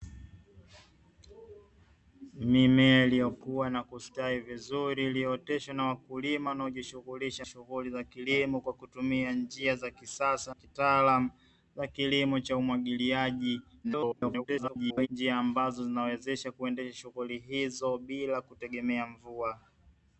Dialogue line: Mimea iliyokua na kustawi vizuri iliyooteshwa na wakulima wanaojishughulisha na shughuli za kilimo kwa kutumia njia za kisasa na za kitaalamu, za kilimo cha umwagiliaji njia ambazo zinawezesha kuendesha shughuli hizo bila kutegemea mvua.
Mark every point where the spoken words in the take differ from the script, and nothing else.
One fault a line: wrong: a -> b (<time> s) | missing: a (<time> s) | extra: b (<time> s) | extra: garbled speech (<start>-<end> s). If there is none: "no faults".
missing: na (7.5 s)
missing: na za (10.5 s)
extra: garbled speech (13.8-15.1 s)